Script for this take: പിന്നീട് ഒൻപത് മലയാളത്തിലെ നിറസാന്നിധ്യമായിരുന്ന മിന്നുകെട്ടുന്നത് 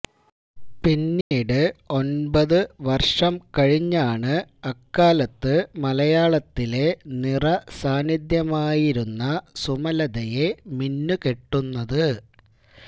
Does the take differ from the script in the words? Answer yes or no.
yes